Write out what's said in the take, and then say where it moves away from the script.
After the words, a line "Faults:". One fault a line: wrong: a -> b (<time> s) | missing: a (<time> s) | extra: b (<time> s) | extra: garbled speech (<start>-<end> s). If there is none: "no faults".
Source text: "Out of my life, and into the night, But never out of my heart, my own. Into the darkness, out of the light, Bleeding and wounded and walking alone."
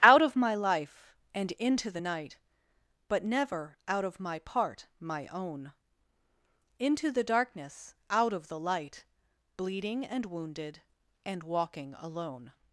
"Out of my life, and into the night, But never out of my part, my own. Into the darkness, out of the light, Bleeding and wounded and walking alone."
Faults:
wrong: heart -> part (4.4 s)